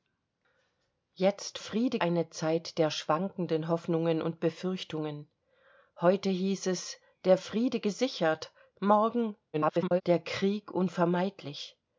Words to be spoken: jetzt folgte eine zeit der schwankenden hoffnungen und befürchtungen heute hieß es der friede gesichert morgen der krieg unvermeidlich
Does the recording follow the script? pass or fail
fail